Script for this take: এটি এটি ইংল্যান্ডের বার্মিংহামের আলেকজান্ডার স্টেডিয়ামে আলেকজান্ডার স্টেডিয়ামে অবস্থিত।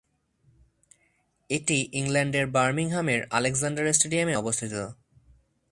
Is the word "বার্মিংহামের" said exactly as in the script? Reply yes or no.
yes